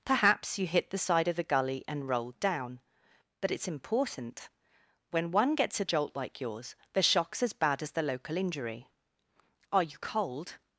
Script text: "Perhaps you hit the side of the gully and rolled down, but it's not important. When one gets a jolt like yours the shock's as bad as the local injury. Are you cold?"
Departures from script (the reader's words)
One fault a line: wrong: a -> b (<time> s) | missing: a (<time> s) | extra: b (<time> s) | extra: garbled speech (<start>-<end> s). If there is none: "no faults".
missing: not (3.7 s)